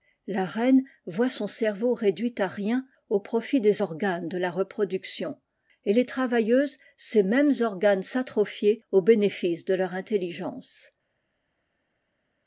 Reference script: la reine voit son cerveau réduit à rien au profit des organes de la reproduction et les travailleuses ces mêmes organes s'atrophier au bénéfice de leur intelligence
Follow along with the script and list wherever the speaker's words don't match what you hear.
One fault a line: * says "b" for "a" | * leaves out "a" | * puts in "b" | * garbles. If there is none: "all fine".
all fine